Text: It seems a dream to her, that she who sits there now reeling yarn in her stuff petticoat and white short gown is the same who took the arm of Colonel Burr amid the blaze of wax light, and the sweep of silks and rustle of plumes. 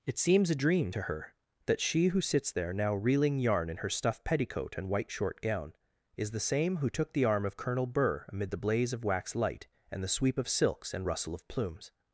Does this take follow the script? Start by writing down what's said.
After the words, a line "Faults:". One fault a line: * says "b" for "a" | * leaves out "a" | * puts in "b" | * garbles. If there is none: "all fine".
It seems a dream to her, that she who sits there now reeling yarn in her stuff petticoat and white short gown is the same who took the arm of Colonel Burr amid the blaze of wax light, and the sweep of silks and rustle of plumes.
Faults:
all fine